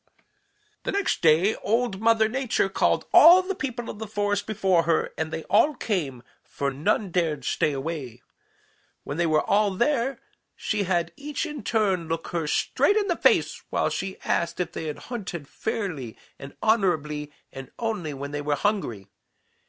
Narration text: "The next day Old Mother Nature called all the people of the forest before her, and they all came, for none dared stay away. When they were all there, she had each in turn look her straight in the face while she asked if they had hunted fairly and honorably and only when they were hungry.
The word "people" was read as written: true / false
true